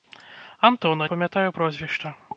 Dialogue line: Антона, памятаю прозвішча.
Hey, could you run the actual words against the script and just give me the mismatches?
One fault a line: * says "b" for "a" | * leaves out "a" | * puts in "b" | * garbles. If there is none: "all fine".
all fine